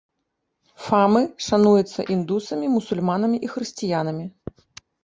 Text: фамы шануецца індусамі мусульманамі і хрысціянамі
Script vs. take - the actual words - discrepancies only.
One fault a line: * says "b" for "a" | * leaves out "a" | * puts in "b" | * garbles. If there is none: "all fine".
all fine